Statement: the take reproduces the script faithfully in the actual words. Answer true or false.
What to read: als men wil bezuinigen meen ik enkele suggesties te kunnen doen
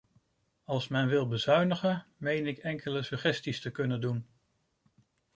true